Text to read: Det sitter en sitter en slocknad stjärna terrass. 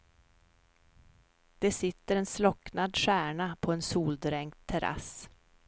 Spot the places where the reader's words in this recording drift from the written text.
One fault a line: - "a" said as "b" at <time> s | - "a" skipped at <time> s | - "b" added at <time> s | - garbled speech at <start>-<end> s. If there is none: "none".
- "sitter" said as "slocknad stjärna på" at 2.3 s
- "slocknad stjärna" said as "soldränkt" at 3.8 s